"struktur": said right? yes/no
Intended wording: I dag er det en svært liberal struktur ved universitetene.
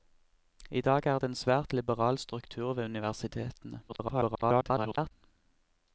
yes